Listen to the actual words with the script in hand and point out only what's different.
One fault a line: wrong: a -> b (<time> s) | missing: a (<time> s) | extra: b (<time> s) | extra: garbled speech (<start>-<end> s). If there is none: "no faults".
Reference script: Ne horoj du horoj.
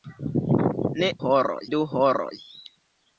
no faults